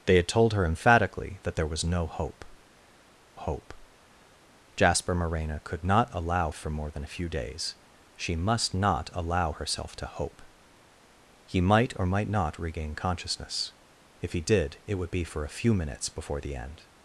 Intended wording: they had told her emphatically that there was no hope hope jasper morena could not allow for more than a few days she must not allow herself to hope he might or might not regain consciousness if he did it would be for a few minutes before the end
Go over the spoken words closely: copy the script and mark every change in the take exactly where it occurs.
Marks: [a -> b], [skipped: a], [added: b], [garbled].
they had told her emphatically that there was no hope hope jasper morena could not allow for more than a few days she must not allow herself to hope he might or might not regain consciousness if he did it would be for a few minutes before the end